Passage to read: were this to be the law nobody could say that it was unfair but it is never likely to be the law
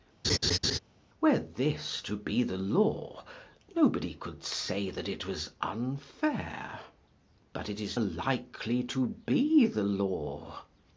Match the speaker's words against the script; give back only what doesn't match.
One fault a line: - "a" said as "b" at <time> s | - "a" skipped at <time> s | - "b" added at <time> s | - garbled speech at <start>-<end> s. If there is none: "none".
- "never" skipped at 8.0 s